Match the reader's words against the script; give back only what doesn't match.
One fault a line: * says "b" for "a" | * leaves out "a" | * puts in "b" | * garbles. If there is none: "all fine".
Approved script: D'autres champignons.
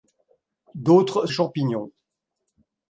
all fine